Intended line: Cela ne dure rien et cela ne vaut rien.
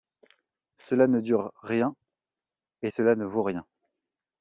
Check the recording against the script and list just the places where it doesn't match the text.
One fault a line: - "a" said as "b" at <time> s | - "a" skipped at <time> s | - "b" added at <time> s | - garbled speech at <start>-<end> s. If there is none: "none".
none